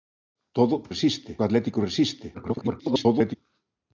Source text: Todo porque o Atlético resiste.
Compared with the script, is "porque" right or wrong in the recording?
wrong